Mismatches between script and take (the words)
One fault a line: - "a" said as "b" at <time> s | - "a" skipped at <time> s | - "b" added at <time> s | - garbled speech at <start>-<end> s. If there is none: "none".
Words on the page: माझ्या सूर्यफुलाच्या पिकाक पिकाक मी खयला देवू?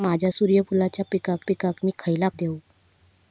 none